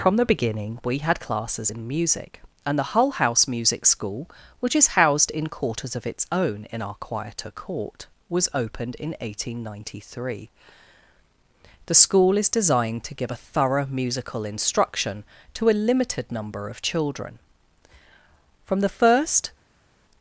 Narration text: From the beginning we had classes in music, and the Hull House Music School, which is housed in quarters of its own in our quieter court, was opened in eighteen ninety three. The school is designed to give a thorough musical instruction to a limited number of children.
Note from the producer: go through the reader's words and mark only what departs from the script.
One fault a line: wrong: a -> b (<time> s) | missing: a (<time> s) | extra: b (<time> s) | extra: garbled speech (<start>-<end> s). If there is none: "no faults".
extra: From the first (18.6 s)